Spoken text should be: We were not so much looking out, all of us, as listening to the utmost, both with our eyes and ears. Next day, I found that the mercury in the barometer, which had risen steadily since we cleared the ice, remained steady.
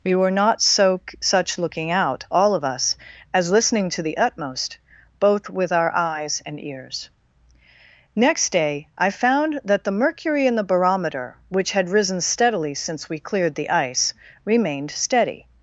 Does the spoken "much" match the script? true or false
false